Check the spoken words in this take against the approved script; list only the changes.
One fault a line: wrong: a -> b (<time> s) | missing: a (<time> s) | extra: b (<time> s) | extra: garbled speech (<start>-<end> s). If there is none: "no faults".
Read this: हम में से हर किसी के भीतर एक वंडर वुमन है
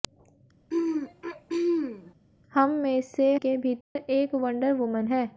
missing: हर किसी (3.3 s)